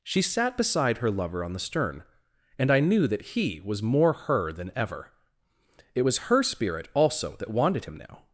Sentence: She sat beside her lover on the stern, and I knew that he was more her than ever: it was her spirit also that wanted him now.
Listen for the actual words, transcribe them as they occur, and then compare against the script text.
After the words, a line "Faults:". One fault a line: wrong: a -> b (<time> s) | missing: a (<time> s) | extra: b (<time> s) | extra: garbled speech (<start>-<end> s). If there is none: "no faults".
She sat beside her lover on the stern, and I knew that he was more her than ever: it was her spirit also that wanted him now.
Faults:
no faults